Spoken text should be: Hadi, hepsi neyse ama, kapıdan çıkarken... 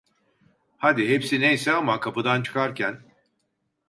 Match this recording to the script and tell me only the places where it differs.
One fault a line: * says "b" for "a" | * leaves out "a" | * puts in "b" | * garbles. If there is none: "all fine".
all fine